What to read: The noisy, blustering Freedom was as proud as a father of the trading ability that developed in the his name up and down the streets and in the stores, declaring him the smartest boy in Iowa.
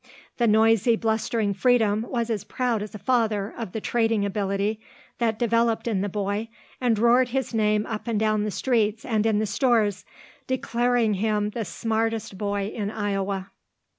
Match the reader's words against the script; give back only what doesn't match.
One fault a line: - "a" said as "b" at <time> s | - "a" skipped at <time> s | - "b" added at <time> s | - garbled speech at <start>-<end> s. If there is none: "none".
- "boy and roared" added at 6.1 s